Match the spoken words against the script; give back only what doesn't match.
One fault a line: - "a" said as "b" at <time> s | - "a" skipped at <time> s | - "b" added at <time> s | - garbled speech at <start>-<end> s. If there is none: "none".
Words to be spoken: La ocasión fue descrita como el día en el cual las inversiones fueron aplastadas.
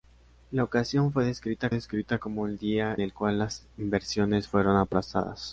- "descrita" added at 1.7 s
- "en" skipped at 3.0 s